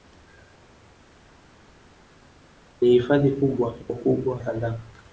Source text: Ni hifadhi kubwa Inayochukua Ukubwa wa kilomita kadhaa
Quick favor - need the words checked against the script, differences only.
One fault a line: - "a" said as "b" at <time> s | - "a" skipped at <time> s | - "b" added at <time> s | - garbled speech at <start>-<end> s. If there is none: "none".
- "Inayochukua" skipped at 3.8 s
- "kilomita" skipped at 4.4 s